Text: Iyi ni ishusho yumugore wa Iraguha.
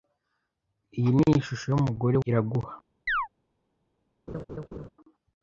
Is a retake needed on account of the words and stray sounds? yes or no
yes